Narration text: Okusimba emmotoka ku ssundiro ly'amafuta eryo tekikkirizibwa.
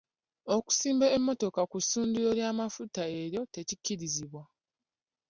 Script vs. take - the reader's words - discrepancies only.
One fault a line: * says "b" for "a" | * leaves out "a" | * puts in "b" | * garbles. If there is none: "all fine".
all fine